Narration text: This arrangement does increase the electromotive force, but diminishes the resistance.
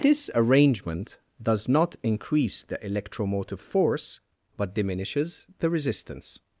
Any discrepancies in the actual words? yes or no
yes